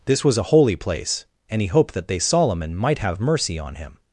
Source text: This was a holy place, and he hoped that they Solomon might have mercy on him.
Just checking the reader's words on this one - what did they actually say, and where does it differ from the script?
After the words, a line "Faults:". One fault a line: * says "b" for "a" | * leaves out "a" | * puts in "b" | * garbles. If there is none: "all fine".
This was a holy place, and he hoped that they Solomon might have mercy on him.
Faults:
all fine